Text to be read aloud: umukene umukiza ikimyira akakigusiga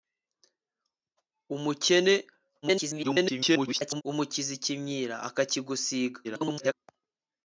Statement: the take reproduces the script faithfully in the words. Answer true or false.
false